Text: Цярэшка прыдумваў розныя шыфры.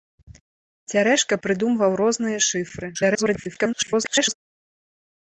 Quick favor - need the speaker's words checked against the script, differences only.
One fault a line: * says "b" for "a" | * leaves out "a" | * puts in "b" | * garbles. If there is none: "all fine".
* garbles